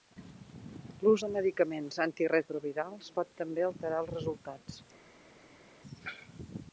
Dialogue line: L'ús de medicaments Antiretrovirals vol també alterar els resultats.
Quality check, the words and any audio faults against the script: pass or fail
fail